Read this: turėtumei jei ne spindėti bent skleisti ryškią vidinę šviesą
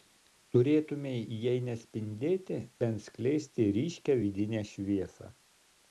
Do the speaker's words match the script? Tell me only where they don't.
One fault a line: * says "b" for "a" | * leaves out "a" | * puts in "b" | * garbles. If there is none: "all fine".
all fine